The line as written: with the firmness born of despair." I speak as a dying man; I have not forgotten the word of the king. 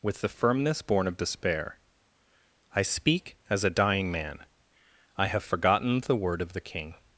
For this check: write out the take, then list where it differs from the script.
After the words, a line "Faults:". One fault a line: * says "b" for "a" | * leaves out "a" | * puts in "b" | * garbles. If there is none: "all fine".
with the firmness born of despair." I speak as a dying man; I have forgotten the word of the king.
Faults:
* leaves out "not"